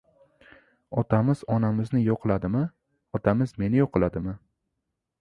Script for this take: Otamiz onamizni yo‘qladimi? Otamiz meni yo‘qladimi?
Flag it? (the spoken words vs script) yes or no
no